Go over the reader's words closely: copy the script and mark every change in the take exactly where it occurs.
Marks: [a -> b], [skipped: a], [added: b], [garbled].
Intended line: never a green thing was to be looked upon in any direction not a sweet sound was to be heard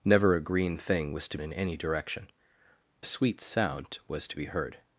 never a green thing was to [skipped: be looked upon] in any direction [skipped: not] a sweet sound was to be heard